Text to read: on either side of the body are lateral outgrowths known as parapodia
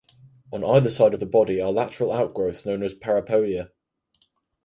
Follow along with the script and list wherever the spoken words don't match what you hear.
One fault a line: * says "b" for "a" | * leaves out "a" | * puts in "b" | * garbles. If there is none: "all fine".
all fine